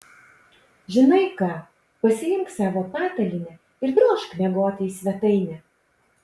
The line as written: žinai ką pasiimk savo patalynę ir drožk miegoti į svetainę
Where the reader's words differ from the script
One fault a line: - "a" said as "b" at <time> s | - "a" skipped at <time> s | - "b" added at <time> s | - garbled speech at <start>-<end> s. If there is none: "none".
none